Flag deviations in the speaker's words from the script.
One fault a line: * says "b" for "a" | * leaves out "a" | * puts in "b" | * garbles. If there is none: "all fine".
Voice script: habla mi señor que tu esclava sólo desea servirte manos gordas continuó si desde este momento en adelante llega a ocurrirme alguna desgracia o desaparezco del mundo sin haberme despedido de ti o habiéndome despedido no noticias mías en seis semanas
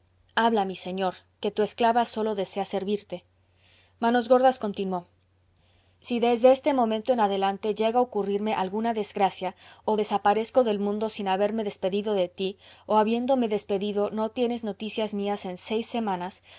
* puts in "tienes"